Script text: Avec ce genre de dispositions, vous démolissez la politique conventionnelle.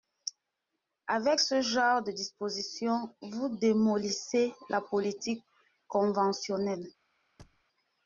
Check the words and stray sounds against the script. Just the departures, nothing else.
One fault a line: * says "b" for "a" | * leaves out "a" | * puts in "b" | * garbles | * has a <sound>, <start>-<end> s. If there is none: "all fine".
* has a thud, 7.4-7.6 s